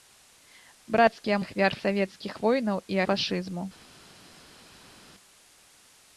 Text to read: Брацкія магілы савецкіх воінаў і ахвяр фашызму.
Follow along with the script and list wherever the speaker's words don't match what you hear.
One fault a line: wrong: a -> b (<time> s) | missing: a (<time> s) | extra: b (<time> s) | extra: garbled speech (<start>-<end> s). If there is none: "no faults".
wrong: магілы -> ахвяр (1.4 s)
missing: ахвяр (3.0 s)